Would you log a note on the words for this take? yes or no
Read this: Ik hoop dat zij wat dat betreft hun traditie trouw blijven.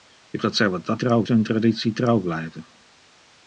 yes